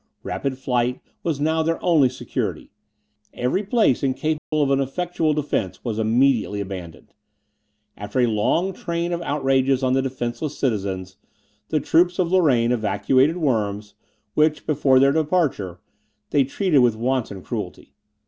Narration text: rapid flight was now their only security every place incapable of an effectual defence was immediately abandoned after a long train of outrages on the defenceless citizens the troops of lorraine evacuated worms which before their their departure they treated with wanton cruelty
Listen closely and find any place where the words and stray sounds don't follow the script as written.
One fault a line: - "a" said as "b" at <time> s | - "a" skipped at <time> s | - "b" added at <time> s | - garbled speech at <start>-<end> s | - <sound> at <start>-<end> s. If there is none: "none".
- dropout at 4.4-4.5 s
- "their" skipped at 15.1 s